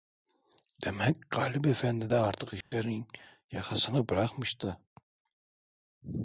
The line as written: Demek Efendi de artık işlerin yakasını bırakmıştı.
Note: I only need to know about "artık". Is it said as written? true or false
true